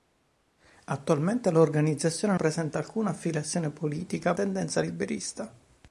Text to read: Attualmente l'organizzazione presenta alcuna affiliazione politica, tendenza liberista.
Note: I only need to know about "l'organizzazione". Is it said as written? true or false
true